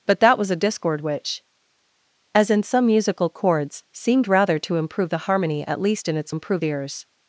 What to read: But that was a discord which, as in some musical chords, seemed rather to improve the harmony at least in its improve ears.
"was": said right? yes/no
yes